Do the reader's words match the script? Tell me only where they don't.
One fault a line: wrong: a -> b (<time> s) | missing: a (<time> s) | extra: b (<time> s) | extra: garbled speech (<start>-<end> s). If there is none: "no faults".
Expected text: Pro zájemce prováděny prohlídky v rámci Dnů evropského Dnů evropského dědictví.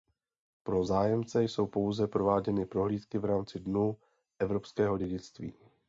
extra: jsou pouze (1.4 s)
missing: Dnů evropského (5.0 s)